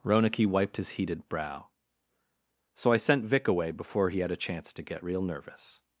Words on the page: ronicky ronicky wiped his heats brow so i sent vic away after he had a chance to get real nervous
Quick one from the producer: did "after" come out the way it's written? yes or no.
no